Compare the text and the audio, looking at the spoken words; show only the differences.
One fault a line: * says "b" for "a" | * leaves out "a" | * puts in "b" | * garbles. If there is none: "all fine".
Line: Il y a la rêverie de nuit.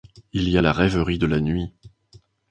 * puts in "la"